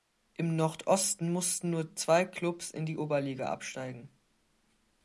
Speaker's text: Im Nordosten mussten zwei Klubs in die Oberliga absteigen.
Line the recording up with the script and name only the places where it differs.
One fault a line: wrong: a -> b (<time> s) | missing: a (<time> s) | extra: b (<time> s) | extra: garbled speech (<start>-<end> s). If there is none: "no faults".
extra: nur (1.7 s)